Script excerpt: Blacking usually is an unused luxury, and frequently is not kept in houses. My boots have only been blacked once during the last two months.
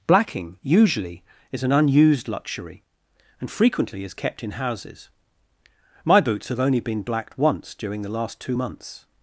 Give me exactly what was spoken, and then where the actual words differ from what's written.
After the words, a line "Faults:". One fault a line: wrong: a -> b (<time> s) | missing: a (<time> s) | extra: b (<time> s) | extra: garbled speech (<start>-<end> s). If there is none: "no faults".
Blacking usually is an unused luxury, and frequently is kept in houses. My boots have only been blacked once during the last two months.
Faults:
missing: not (4.1 s)